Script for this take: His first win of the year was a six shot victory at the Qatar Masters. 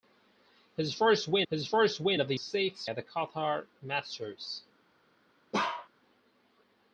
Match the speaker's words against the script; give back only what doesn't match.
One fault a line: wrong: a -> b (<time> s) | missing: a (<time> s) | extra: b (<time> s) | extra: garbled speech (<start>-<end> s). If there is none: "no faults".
extra: his first win (1.5 s)
missing: year was (2.3 s)
missing: shot victory (2.9 s)